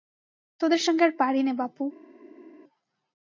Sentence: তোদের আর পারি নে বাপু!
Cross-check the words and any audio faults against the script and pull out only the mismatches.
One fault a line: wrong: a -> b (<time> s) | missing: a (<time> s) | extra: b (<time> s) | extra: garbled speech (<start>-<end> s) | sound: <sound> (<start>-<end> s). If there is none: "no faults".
extra: সঙ্গে (0.9 s)